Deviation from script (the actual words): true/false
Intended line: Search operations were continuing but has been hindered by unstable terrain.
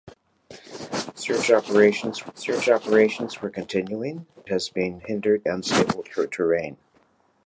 true